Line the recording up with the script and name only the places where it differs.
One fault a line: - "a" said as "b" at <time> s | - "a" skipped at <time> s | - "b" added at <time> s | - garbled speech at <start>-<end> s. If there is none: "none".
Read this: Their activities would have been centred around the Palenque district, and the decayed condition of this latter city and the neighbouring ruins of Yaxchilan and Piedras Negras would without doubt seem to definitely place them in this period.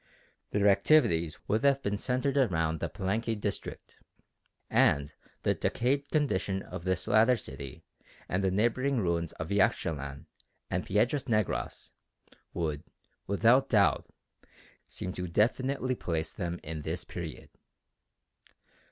none